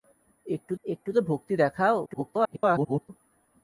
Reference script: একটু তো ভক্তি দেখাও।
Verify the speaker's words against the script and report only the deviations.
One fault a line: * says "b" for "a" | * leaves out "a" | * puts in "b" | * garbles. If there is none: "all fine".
* puts in "একটু"
* garbles